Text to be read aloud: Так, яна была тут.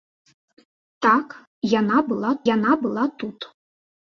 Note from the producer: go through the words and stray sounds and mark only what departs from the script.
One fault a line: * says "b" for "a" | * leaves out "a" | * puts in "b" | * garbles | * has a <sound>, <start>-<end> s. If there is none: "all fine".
* puts in "яна была"